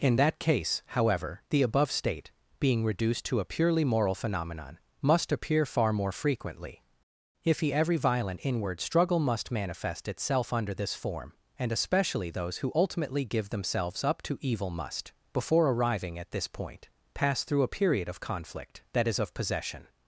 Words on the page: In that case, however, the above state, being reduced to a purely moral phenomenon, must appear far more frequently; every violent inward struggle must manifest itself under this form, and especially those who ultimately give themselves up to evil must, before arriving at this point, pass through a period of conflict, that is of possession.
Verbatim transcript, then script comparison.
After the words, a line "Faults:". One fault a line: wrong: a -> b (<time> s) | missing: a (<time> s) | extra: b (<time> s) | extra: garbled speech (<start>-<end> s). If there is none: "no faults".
In that case, however, the above state, being reduced to a purely moral phenomenon, must appear far more frequently; if he every violent inward struggle must manifest itself under this form, and especially those who ultimately give themselves up to evil must, before arriving at this point, pass through a period of conflict, that is of possession.
Faults:
extra: if he (7.4 s)